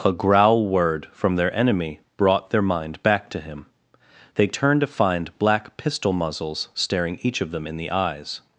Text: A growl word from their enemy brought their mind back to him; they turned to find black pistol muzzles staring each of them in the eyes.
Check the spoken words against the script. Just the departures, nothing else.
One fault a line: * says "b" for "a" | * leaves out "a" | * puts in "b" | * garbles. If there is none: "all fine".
all fine